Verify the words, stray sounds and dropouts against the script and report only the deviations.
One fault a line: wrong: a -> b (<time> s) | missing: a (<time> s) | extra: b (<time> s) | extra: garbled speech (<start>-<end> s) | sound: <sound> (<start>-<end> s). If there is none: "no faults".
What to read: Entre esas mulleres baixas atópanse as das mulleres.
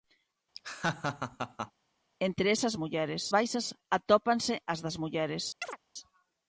sound: laugh (0.5-1.7 s)
sound: chirp (5.6-5.8 s)